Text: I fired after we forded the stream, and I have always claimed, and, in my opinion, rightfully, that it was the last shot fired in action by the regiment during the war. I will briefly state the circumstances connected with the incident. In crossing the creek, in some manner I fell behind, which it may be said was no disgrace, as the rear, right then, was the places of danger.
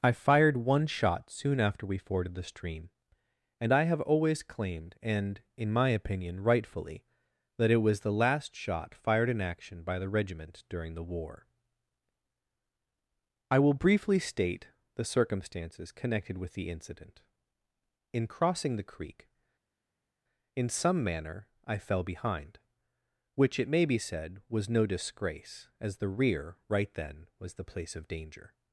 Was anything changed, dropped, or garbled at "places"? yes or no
yes